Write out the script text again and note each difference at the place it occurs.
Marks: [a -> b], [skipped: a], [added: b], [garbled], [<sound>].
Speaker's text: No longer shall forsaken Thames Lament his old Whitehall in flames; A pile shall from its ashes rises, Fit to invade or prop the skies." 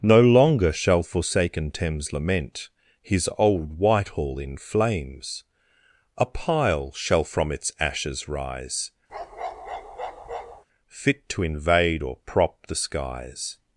No longer shall forsaken Thames Lament his old Whitehall in flames; A pile shall from its ashes [rises, -> rise] [bark] Fit to invade or prop the skies."